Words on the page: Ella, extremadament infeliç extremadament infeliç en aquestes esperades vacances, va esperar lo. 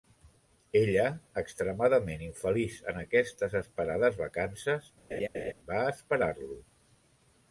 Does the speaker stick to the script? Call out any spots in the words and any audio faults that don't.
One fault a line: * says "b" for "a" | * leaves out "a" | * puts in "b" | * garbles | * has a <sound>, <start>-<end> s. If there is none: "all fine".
* leaves out "extremadament infeliç"
* has a laugh, 5.1-5.5 s